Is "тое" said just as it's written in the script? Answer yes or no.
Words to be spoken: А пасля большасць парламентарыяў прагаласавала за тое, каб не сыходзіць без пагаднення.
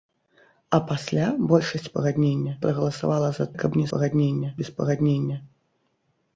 no